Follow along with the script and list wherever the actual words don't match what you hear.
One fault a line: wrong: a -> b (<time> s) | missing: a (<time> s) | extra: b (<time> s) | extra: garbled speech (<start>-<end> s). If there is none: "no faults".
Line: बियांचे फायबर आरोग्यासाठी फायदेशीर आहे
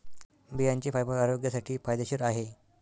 no faults